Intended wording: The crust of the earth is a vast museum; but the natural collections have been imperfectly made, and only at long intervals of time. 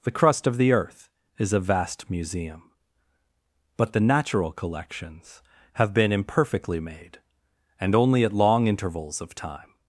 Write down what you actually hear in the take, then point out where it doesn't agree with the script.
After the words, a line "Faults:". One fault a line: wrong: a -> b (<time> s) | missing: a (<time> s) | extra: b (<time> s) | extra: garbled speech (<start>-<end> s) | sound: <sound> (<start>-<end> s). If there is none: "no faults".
The crust of the earth is a vast museum; but the natural collections have been imperfectly made, and only at long intervals of time.
Faults:
no faults